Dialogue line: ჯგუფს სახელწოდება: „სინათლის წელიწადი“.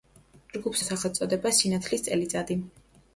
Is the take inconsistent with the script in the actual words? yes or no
no